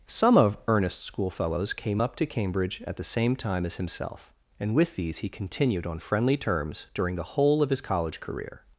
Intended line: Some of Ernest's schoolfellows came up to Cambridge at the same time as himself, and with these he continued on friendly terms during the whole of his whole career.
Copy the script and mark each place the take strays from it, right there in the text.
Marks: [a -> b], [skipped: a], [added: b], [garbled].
Some of Ernest's schoolfellows came up to Cambridge at the same time as himself, and with these he continued on friendly terms during the whole of his [whole -> college] career.